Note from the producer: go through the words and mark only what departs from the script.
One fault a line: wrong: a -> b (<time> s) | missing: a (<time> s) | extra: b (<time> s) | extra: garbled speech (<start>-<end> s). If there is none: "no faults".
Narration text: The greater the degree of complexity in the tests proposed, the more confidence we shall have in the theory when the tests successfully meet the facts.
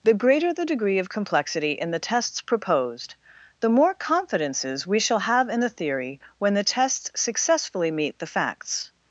wrong: confidence -> confidences (3.9 s)